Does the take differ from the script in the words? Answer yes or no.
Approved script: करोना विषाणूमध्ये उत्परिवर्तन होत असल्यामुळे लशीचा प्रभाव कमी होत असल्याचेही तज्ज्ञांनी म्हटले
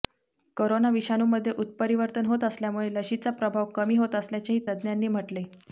no